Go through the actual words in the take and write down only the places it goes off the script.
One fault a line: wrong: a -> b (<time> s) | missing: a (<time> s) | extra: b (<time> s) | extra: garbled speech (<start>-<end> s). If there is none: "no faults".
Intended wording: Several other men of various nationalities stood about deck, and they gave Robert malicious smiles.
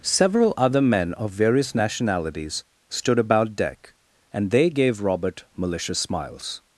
no faults